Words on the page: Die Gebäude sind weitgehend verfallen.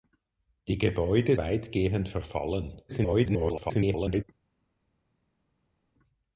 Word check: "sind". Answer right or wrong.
wrong